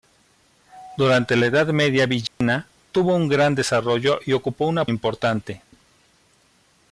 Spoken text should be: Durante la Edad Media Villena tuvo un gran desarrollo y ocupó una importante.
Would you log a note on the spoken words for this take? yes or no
no